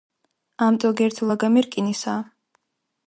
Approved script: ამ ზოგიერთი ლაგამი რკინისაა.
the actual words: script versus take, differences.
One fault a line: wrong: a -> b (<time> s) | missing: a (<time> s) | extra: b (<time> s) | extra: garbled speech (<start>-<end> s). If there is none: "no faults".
no faults